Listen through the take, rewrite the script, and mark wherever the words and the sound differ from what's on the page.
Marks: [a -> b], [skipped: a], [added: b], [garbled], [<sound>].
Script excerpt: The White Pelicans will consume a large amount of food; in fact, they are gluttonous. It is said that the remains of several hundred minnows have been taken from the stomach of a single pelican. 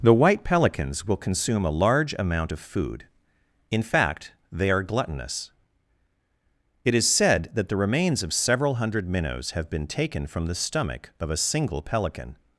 The White Pelicans will consume a large amount of food; in fact, they are gluttonous. It is said that the remains of several hundred minnows have been taken from the stomach of a single pelican.